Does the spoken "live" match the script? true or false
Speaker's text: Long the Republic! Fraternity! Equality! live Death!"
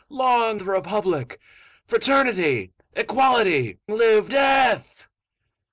true